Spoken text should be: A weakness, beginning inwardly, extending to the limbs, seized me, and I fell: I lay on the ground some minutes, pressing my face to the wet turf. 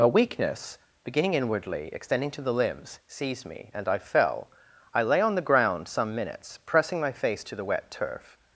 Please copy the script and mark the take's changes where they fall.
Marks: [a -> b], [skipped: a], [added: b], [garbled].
A weakness, beginning inwardly, extending to the limbs, seized me, and I fell: I lay on the ground some minutes, pressing my face to the wet turf.